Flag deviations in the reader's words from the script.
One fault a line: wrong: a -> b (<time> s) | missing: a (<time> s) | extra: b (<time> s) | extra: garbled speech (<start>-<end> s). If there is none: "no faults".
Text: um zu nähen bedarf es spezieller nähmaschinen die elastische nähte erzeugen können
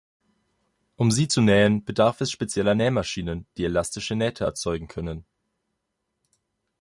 extra: sie (1.1 s)